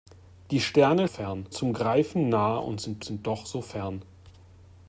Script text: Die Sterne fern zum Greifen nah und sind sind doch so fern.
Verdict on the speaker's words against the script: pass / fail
pass